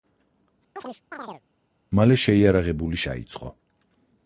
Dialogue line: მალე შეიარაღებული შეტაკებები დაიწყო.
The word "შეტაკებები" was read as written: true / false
false